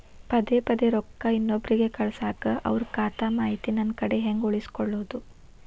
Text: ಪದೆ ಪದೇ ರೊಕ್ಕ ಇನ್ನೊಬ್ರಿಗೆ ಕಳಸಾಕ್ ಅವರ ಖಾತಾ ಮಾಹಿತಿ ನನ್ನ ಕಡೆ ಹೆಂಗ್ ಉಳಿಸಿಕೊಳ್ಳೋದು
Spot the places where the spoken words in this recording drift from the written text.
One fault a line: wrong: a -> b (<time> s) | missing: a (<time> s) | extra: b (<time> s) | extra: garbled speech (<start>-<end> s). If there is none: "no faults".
no faults